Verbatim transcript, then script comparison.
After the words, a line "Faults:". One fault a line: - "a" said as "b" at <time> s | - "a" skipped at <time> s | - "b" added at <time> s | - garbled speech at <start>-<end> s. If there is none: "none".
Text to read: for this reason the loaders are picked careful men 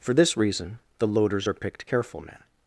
for this reason the loaders are picked careful men
Faults:
none